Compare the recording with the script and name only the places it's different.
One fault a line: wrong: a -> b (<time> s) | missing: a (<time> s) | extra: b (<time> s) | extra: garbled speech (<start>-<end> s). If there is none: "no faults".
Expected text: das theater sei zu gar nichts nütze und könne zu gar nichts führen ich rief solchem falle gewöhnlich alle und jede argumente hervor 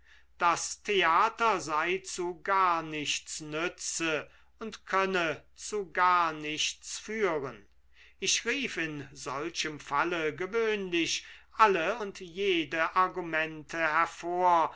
extra: in (8.8 s)